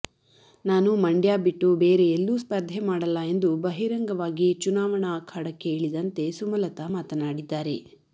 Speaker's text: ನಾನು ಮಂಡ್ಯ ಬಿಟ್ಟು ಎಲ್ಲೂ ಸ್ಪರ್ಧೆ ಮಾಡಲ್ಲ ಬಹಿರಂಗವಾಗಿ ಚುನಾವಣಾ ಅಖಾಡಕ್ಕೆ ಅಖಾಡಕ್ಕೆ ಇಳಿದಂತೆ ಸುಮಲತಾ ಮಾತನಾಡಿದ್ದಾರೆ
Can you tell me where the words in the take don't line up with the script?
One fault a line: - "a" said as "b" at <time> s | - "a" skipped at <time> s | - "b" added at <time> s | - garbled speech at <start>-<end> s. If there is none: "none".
- "ಬೇರೆ" added at 1.8 s
- "ಎಂದು" added at 3.3 s
- "ಅಖಾಡಕ್ಕೆ" skipped at 5.7 s